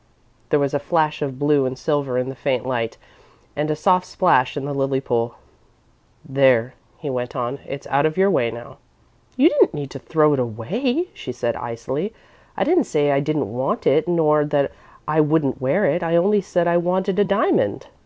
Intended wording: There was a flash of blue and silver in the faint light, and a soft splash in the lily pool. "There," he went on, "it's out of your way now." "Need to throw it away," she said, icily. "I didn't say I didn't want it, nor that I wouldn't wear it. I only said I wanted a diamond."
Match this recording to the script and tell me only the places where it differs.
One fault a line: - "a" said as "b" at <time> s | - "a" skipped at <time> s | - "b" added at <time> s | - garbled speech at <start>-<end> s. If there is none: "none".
- "You didn't" added at 9.3 s